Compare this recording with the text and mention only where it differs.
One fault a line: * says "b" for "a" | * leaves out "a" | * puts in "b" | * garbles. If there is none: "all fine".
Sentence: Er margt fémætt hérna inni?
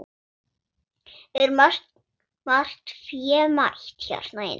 all fine